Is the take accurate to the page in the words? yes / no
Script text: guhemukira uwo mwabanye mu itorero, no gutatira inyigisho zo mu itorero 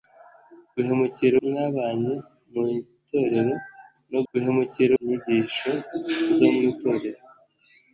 no